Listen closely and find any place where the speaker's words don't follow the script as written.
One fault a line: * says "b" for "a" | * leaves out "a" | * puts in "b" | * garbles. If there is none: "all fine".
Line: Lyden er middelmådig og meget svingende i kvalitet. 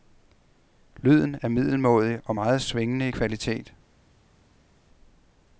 all fine